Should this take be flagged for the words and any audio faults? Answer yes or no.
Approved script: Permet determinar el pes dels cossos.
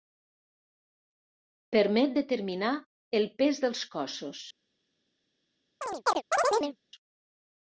yes